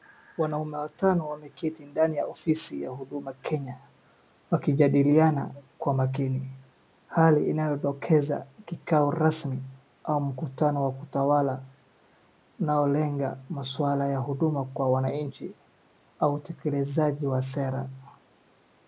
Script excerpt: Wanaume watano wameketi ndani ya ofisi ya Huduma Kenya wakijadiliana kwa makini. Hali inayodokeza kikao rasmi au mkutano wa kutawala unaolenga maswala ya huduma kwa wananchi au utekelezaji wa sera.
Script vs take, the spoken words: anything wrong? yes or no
no